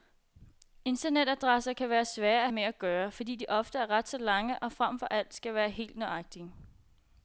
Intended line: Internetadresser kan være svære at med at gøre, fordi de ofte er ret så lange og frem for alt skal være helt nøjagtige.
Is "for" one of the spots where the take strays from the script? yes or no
no